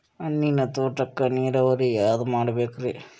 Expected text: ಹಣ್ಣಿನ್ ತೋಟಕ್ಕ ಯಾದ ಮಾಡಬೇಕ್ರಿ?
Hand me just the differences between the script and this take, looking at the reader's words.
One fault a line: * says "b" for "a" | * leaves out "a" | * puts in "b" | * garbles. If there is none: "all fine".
* puts in "ನೀರಾವರಿ"